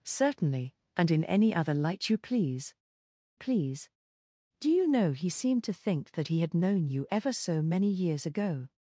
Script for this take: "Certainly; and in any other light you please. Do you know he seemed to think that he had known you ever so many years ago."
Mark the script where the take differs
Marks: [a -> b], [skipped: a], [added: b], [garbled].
"Certainly; and in any other light you please. [added: please] Do you know he seemed to think that he had known you ever so many years ago."